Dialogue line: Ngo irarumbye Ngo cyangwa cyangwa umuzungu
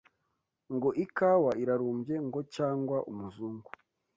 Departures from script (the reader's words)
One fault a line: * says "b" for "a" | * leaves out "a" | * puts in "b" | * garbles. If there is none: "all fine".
* puts in "ikawa"
* leaves out "cyangwa"